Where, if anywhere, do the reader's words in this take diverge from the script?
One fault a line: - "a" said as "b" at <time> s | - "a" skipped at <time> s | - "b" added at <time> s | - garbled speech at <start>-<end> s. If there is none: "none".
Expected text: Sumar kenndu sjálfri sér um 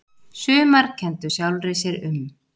none